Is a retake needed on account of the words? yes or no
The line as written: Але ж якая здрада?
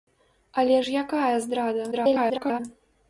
yes